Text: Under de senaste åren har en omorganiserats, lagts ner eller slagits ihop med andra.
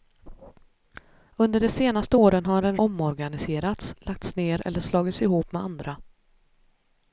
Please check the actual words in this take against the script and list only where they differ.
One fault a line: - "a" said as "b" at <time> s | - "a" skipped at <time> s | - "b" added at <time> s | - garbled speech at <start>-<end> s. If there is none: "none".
none